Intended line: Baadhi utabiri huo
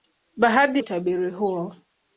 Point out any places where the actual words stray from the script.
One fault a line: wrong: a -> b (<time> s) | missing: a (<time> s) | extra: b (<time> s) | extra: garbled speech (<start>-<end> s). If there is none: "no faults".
no faults